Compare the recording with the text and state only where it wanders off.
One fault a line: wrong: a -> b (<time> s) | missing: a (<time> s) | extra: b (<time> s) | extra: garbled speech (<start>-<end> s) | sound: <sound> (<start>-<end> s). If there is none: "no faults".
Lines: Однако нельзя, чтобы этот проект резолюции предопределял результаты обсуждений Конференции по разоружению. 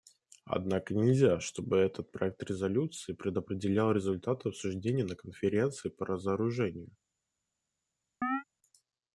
extra: на (5.0 s)
sound: chirp (8.2-8.4 s)